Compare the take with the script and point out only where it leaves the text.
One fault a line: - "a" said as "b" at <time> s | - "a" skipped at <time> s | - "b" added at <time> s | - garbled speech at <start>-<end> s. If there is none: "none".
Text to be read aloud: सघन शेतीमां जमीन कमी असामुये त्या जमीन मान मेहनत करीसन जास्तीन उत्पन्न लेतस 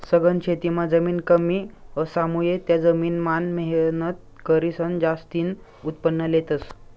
none